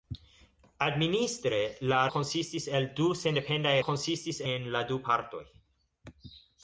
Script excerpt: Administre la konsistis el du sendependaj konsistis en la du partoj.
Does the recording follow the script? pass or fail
pass